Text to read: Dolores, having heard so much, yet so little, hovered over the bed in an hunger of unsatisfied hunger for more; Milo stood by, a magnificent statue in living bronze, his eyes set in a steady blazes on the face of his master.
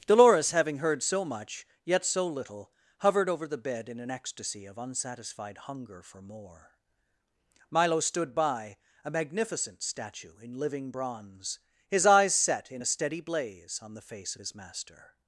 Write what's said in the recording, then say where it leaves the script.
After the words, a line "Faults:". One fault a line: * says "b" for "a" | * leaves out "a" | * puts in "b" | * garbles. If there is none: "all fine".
Dolores, having heard so much, yet so little, hovered over the bed in an ecstasy of unsatisfied hunger for more; Milo stood by, a magnificent statue in living bronze, his eyes set in a steady blaze on the face of his master.
Faults:
* says "ecstasy" for "hunger"
* says "blaze" for "blazes"